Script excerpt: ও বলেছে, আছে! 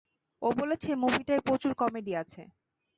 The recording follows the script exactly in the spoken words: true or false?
false